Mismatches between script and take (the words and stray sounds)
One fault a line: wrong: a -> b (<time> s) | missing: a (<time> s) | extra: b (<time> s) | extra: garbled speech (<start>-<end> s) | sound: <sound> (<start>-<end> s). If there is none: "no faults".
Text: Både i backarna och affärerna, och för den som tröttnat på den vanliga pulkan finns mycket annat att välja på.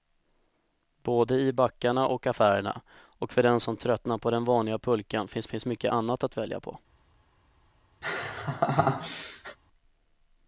extra: finns (5.4 s)
sound: laugh (8.0-9.6 s)